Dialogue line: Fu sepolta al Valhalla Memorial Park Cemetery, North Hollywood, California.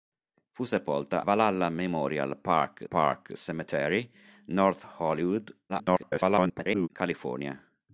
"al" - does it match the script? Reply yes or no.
no